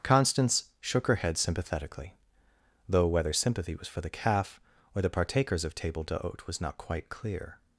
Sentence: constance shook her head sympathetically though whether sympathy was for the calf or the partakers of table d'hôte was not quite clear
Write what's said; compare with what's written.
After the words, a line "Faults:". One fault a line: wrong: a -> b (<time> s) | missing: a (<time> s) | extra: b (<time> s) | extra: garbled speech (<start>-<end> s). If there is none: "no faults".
constance shook her head sympathetically though whether sympathy was for the calf or the partakers of table d'hôte was not quite clear
Faults:
no faults